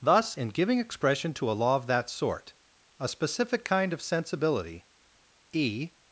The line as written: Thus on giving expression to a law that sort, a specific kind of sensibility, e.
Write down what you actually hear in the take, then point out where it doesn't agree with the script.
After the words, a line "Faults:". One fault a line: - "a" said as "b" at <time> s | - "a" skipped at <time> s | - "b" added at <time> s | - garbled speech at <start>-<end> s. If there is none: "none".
Thus in giving expression to a law of that sort, a specific kind of sensibility, e.
Faults:
- "on" said as "in" at 0.4 s
- "of" added at 1.8 s